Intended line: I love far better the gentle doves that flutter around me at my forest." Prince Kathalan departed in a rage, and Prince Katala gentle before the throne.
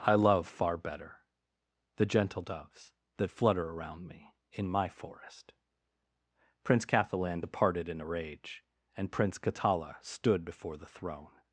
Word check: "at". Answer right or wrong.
wrong